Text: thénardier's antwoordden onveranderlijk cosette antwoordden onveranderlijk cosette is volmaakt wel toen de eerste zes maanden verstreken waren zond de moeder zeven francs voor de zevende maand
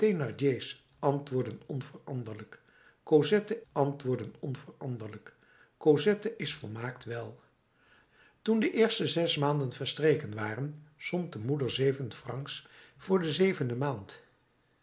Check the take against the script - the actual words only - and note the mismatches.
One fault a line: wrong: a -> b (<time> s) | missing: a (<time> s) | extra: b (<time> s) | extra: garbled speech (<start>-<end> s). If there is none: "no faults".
no faults